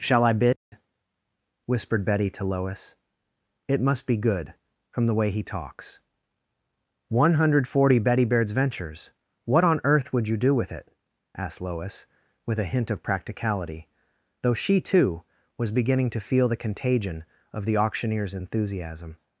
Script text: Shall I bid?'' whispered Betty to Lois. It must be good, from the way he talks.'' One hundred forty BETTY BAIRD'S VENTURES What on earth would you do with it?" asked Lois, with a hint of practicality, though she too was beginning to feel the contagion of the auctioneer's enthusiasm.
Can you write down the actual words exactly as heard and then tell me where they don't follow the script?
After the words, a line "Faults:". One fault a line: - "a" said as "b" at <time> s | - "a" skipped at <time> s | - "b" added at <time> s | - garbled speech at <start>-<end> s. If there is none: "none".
Shall I bid?'' whispered Betty to Lois. It must be good, from the way he talks.'' One hundred forty BETTY BAIRD'S VENTURES What on earth would you do with it?" asked Lois, with a hint of practicality, though she too was beginning to feel the contagion of the auctioneer's enthusiasm.
Faults:
none